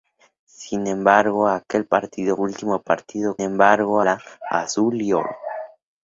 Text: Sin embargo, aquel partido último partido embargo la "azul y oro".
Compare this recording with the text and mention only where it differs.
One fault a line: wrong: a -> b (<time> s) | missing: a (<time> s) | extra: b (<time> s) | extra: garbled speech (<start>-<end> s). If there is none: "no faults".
no faults